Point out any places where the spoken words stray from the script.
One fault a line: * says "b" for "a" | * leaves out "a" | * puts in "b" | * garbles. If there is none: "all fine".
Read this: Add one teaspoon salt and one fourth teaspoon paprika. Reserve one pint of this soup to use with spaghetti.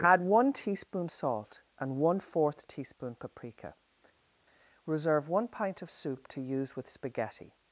* leaves out "this"